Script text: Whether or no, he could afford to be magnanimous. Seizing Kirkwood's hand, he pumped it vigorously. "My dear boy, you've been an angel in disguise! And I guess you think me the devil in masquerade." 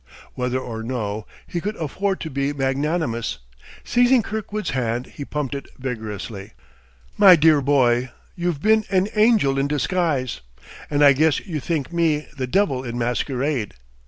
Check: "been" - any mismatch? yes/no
no